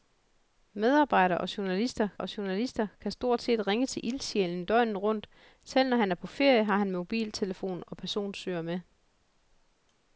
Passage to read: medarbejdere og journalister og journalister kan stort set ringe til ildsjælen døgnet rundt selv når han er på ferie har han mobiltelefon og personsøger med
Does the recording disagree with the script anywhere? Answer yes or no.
no